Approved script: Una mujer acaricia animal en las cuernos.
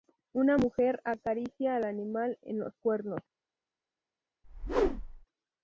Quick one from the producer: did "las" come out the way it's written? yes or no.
no